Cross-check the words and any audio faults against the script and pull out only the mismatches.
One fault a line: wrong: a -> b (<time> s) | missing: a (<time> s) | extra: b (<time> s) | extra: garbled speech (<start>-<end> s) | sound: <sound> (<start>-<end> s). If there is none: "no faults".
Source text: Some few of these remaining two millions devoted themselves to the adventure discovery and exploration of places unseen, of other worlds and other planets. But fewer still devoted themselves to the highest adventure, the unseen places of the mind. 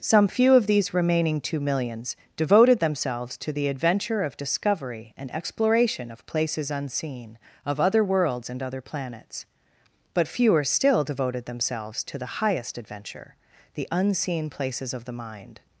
extra: of (4.2 s)